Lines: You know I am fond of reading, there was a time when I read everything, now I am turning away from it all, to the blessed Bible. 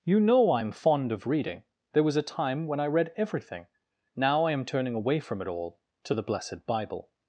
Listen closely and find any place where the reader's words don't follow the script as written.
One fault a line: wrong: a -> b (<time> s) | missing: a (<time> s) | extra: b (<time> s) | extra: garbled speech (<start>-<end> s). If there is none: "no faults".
no faults